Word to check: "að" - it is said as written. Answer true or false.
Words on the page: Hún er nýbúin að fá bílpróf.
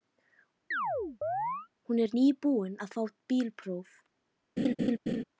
true